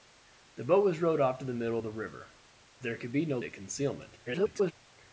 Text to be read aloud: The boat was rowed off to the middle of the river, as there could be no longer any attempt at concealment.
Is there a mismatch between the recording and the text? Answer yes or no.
yes